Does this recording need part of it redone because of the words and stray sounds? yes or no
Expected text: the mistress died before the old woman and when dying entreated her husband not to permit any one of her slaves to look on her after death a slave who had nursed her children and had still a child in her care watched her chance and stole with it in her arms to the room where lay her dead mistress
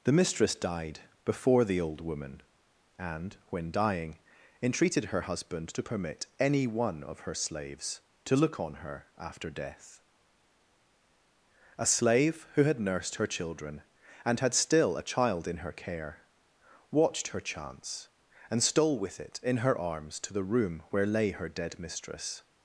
yes